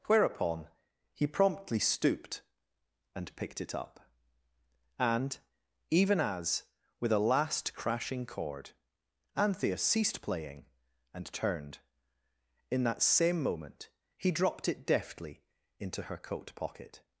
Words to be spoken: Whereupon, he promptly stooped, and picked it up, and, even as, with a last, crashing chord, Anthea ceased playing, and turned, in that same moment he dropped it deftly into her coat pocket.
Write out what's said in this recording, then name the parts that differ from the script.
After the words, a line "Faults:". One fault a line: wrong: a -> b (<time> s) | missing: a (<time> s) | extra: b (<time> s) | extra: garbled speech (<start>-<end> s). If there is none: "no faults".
Whereupon, he promptly stooped, and picked it up, and, even as, with a last, crashing chord, Anthea ceased playing, and turned, in that same moment he dropped it deftly into her coat pocket.
Faults:
no faults